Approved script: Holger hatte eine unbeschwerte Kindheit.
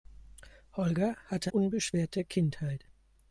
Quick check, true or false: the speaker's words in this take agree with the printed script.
false